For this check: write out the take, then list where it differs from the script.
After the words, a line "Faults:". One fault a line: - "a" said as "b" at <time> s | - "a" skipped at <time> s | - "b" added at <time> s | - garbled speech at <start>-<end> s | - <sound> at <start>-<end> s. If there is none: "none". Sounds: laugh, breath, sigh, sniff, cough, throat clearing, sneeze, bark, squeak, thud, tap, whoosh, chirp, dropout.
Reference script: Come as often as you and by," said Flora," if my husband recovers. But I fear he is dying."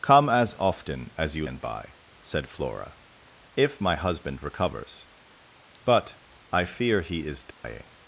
Come as often as you and by," said Flora," if my husband recovers. But I fear he is dying."
Faults:
- dropout at 7.5-7.6 s